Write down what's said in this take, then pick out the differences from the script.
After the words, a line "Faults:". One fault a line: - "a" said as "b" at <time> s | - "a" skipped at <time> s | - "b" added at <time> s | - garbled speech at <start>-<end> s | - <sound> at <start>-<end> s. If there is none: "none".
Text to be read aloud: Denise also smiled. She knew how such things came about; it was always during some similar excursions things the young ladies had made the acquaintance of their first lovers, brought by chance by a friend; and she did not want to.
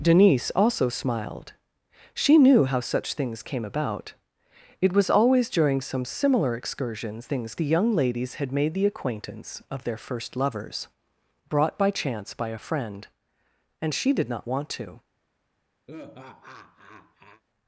Denise also smiled. She knew how such things came about; it was always during some similar excursions things the young ladies had made the acquaintance of their first lovers, brought by chance by a friend; and she did not want to.
Faults:
- laugh at 15.9-17.4 s